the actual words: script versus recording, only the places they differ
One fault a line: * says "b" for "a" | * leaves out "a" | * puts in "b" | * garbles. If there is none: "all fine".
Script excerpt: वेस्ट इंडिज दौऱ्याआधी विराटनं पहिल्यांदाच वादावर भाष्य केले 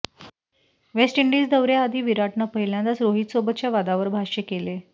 * puts in "रोहितसोबतच्या"